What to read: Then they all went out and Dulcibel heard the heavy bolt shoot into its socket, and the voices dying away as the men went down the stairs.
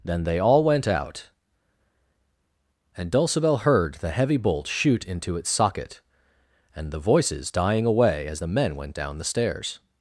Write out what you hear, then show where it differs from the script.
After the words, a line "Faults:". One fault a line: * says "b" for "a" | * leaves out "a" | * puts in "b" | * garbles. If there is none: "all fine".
Then they all went out and Dulcibel heard the heavy bolt shoot into its socket, and the voices dying away as the men went down the stairs.
Faults:
all fine